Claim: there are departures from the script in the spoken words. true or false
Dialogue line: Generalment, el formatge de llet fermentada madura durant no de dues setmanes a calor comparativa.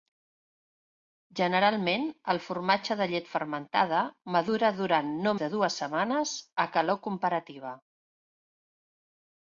false